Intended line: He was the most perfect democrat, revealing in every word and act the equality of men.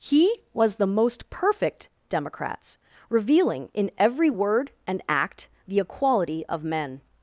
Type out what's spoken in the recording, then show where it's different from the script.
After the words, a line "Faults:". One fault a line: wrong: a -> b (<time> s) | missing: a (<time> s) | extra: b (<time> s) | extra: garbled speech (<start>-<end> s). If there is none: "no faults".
He was the most perfect democrats, revealing in every word and act the equality of men.
Faults:
wrong: democrat -> democrats (2.1 s)